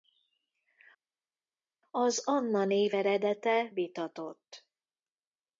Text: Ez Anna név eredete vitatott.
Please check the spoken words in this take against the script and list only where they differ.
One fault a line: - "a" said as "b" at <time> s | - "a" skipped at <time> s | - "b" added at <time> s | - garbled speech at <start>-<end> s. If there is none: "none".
- "Ez" said as "Az" at 1.9 s